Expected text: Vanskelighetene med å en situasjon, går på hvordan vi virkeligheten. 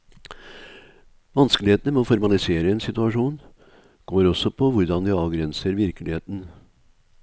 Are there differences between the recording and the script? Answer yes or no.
yes